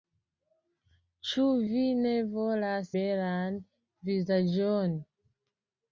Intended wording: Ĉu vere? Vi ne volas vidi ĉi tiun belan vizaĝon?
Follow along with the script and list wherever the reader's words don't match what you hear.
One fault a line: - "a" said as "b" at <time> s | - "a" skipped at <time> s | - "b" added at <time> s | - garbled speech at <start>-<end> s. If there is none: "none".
- "vere" skipped at 1.4 s
- "vidi ĉi tiun" skipped at 2.9 s